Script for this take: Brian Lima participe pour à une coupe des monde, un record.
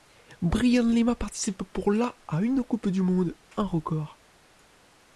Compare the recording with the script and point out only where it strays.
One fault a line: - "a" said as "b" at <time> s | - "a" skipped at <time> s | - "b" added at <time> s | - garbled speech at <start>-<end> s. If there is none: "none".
- "la" added at 1.9 s
- "des" said as "du" at 2.9 s